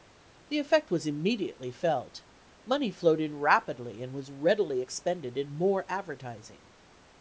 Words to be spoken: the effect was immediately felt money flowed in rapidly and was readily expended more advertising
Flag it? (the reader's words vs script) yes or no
yes